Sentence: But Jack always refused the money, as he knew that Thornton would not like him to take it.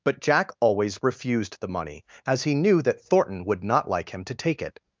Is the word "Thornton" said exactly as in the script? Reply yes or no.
yes